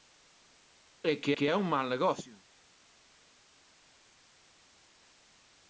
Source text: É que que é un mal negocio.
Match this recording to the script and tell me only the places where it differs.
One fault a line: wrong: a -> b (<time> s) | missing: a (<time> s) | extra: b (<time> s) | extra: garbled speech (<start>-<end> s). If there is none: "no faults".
no faults